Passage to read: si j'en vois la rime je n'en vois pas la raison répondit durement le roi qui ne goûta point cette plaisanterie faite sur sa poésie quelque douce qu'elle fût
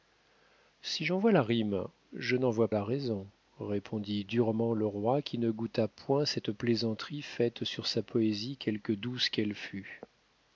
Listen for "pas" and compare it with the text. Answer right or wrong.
wrong